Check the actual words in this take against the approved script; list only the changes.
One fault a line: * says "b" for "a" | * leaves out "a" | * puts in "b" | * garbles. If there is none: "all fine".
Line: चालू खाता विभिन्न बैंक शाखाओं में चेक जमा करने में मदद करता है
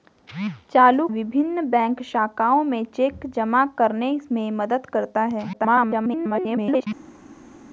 * leaves out "खाता"
* garbles